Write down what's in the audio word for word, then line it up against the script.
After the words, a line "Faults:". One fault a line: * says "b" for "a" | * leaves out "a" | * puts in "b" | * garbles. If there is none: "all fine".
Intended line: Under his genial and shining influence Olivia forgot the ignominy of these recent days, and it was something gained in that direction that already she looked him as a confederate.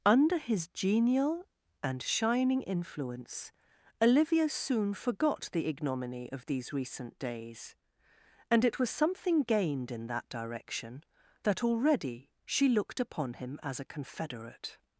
Under his genial and shining influence Olivia soon forgot the ignominy of these recent days, and it was something gained in that direction that already she looked upon him as a confederate.
Faults:
* puts in "soon"
* puts in "upon"